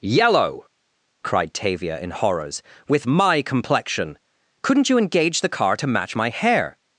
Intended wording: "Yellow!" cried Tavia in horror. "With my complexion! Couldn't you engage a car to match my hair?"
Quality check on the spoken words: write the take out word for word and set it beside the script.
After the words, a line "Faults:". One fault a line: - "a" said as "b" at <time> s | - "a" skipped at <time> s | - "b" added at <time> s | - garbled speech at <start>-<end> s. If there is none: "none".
"Yellow!" cried Tavia in horrors. "With my complexion! Couldn't you engage the car to match my hair?"
Faults:
- "horror" said as "horrors" at 2.1 s
- "a" said as "the" at 5.4 s